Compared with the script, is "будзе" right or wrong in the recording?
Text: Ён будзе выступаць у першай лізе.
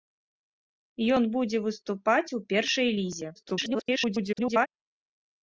right